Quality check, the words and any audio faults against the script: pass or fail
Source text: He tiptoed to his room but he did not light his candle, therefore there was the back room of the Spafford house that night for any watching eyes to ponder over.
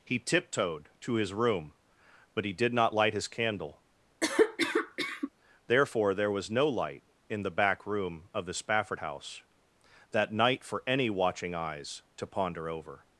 fail